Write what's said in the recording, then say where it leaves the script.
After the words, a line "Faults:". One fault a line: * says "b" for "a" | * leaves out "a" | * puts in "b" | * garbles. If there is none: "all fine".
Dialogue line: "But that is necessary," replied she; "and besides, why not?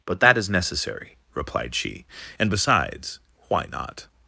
"But that is necessary," replied she; "and besides, why not?
Faults:
all fine